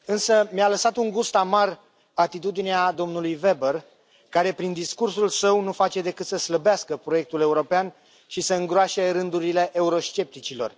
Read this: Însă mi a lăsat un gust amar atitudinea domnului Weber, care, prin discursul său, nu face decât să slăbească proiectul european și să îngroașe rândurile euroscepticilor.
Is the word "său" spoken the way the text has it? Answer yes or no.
yes